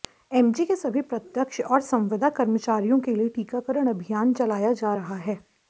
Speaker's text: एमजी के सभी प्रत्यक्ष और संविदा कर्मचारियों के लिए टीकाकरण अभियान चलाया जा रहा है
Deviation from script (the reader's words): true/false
false